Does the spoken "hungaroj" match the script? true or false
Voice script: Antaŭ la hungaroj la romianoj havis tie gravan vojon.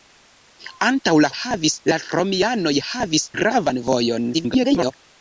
false